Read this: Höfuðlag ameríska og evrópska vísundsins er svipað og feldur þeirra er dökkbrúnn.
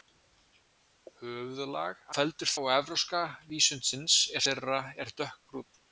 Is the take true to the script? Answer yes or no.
no